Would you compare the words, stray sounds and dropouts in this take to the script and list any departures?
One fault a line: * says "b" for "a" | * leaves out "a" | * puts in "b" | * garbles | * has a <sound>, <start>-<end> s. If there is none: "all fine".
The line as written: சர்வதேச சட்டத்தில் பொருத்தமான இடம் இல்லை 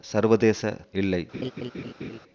* leaves out "சட்டத்தில் பொருத்தமான இடம்"
* has a laugh, 1.3-2.2 s